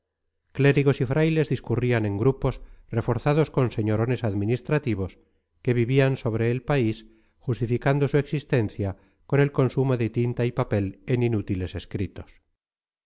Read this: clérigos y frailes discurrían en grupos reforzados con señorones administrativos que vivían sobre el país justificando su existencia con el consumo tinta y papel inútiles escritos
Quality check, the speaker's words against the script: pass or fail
fail